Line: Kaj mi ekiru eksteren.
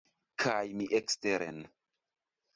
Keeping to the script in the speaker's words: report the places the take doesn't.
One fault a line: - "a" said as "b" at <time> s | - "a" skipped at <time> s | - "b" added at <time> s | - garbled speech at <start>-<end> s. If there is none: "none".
- "ekiru" skipped at 0.9 s